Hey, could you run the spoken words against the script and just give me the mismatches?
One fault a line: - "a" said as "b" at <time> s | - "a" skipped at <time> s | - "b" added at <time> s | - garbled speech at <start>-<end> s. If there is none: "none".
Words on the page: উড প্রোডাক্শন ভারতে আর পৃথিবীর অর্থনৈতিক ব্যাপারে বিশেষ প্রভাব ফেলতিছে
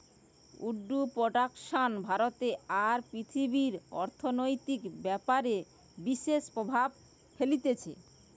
none